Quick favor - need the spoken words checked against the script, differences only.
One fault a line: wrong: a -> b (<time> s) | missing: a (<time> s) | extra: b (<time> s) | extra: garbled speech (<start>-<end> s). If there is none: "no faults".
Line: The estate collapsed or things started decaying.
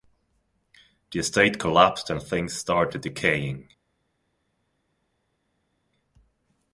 wrong: or -> and (2.1 s)